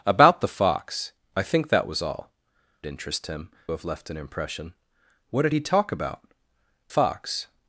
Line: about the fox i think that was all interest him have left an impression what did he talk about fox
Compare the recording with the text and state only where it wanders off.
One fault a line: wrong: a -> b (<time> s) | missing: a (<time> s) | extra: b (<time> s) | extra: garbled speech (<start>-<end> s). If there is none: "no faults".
no faults